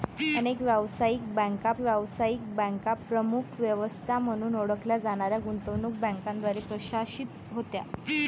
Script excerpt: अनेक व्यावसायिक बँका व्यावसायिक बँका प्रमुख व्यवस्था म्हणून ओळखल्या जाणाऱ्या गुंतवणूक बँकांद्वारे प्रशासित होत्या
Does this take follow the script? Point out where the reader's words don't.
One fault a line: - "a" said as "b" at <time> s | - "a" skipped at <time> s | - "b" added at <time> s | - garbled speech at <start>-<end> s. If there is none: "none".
none